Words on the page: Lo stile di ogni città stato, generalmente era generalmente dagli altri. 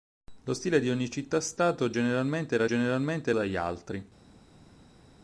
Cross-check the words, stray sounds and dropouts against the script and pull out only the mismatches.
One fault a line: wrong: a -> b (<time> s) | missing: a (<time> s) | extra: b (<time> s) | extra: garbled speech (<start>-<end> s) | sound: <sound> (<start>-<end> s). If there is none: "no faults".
no faults